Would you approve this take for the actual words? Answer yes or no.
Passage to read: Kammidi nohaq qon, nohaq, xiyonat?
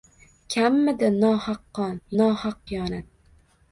yes